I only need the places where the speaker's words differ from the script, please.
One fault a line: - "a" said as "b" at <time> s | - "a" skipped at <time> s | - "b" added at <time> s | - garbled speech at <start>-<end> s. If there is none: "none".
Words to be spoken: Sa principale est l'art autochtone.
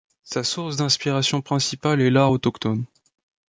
- "source d'inspiration" added at 0.4 s